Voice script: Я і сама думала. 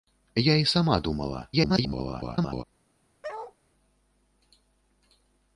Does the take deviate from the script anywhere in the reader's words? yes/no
yes